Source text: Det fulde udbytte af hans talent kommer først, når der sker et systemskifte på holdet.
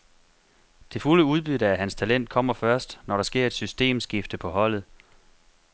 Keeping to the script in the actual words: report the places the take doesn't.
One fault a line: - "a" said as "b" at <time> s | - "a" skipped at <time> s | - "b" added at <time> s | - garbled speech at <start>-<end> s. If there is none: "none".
none